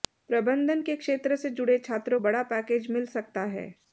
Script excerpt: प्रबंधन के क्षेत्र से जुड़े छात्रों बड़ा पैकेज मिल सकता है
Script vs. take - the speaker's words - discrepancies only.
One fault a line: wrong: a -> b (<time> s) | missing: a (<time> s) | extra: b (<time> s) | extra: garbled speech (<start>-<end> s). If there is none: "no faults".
no faults